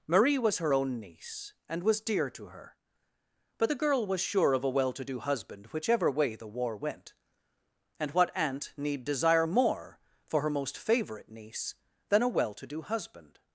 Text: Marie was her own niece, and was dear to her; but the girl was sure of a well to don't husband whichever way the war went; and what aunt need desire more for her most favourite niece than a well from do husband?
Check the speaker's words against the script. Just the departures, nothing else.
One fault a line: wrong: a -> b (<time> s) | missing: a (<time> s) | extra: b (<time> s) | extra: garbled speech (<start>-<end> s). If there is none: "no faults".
wrong: don't -> do (5.0 s)
wrong: from -> to (12.5 s)